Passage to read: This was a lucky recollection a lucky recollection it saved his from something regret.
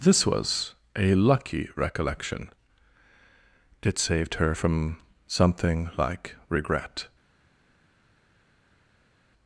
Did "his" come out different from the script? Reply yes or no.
yes